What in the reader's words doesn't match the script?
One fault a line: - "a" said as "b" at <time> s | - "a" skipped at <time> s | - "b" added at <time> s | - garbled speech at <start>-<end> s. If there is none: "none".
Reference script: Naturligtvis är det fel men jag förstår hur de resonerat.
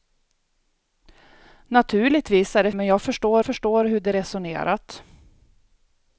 - "fel" skipped at 2.7 s
- "förstår" added at 3.4 s